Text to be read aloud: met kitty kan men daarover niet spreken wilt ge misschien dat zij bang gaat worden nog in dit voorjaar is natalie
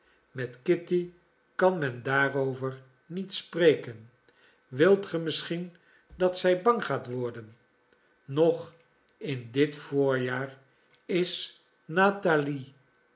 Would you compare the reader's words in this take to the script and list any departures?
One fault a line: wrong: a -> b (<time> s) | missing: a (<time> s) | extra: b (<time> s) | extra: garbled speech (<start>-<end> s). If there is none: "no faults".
no faults